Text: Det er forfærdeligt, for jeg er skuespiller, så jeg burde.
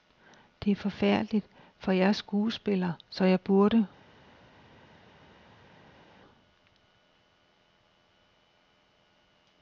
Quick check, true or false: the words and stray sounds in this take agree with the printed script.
true